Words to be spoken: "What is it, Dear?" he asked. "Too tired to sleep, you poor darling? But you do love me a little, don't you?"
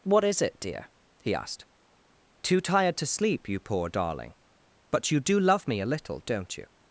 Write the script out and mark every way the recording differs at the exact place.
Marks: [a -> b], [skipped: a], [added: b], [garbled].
"What is it, Dear?" he asked. "Too tired to sleep, you poor darling? But you do love me a little, don't you?"